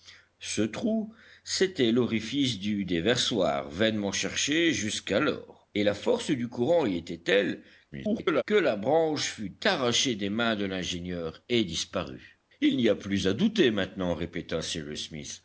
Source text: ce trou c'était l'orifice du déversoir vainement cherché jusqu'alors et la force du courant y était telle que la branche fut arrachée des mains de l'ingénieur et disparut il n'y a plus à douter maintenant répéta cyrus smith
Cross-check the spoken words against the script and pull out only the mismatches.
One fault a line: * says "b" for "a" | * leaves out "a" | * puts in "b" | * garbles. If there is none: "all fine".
* garbles